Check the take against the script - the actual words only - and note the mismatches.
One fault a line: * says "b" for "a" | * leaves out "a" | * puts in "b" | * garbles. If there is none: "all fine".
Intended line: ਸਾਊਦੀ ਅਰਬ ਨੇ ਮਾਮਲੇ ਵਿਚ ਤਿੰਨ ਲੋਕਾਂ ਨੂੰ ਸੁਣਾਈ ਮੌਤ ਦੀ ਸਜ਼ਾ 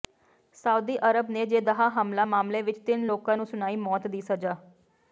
* puts in "ਜੇਦਾਹ ਹਮਲਾ"